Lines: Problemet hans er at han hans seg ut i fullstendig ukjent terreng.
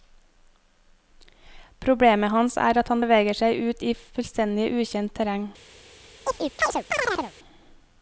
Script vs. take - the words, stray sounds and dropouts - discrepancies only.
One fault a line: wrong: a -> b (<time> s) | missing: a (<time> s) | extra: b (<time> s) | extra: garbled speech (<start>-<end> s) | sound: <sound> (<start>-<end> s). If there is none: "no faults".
wrong: hans -> beveger (3.0 s)
sound: chirp (6.3-7.3 s)